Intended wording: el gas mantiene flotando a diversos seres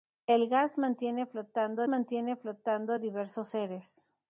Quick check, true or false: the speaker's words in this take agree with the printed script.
false